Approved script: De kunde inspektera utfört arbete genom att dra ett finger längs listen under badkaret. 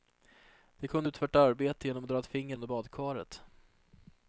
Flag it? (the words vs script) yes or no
yes